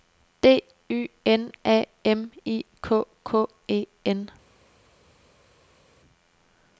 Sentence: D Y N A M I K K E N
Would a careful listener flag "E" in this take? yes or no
no